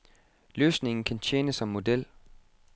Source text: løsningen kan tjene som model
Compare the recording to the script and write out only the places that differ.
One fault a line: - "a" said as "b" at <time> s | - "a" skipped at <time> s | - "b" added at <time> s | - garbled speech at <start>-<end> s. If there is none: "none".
none